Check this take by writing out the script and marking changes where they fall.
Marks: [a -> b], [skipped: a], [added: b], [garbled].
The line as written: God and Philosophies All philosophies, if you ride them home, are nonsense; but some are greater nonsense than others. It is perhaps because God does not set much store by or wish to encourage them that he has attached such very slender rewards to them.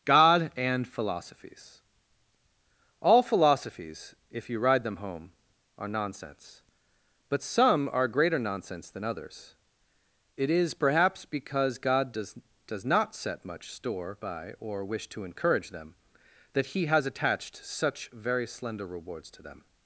God and Philosophies All philosophies, if you ride them home, are nonsense; but some are greater nonsense than others. It is perhaps because God does [added: does] not set much store by or wish to encourage them that he has attached such very slender rewards to them.